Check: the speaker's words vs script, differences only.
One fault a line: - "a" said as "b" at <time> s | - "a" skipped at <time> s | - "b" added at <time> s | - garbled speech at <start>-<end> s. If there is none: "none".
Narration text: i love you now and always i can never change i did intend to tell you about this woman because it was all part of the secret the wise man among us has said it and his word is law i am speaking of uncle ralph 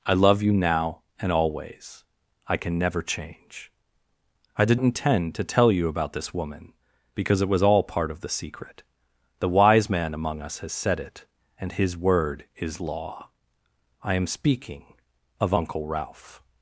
none